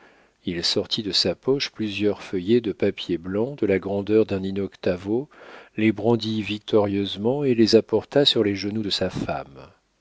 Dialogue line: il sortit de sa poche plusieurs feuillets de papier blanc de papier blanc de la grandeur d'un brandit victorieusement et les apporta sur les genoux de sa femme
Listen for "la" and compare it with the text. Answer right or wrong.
wrong